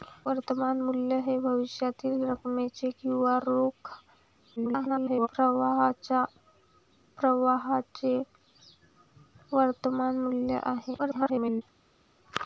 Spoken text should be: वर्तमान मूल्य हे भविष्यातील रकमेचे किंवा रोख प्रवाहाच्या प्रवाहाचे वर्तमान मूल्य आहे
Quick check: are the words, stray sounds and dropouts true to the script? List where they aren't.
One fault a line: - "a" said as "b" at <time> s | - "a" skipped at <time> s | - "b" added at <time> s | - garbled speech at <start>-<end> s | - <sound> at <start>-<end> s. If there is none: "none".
- garbled speech at 4.6-5.3 s
- garbled speech at 11.0-11.6 s